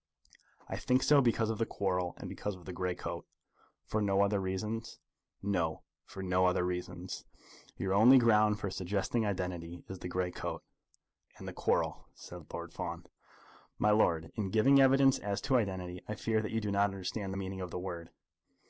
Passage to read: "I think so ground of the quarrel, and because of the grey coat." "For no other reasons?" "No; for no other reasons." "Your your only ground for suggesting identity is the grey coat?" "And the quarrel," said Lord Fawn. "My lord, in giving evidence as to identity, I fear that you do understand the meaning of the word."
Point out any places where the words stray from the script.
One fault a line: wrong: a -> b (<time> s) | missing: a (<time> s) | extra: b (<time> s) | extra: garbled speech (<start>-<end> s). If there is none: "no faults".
wrong: ground -> because (1.2 s)
missing: your (7.9 s)
extra: not (16.7 s)